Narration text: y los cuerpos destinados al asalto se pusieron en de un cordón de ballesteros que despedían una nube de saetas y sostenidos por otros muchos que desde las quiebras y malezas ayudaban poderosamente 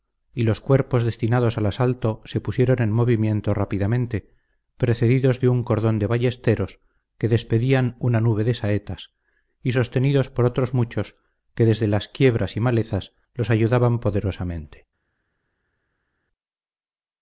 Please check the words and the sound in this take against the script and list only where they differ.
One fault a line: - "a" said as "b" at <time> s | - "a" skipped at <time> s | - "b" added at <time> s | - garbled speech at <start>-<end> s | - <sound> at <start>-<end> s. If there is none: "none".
- "movimiento rápidamente precedidos" added at 2.9 s
- "los" added at 13.3 s